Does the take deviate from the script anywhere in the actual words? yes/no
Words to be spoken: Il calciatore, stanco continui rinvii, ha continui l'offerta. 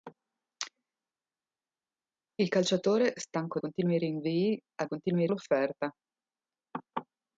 no